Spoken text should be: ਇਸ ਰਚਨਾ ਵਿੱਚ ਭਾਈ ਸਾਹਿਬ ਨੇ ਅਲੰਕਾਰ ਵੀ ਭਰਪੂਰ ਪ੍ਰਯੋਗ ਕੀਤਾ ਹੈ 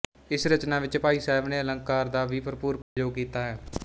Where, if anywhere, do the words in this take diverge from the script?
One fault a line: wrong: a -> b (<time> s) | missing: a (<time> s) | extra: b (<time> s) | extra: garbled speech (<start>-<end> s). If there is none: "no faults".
extra: ਦਾ (2.1 s)